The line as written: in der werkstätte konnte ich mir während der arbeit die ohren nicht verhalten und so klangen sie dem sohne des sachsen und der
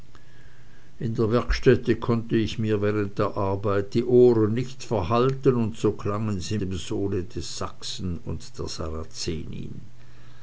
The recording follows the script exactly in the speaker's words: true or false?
true